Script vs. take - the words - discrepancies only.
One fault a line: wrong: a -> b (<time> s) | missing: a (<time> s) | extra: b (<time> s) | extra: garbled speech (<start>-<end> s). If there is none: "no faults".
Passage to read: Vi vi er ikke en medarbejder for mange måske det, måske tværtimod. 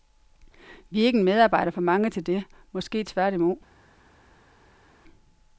missing: vi (1.0 s)
wrong: måske -> til (2.1 s)